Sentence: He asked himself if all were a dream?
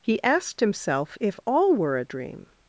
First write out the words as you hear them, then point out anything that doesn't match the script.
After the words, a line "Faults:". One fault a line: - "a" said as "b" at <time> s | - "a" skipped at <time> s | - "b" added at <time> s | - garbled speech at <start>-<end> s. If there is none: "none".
He asked himself if all were a dream?
Faults:
none